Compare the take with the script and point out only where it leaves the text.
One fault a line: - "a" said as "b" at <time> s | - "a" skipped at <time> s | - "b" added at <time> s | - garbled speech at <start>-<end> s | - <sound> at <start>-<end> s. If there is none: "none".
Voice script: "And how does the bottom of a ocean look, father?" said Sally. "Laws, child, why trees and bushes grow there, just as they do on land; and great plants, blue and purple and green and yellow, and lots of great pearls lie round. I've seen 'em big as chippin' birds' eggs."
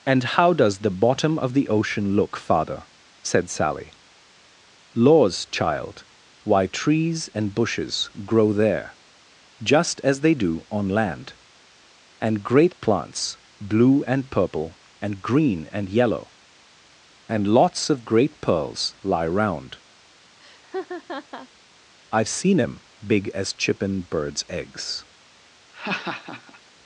- "a" said as "the" at 1.5 s
- laugh at 20.4-21.5 s
- laugh at 25.7-26.6 s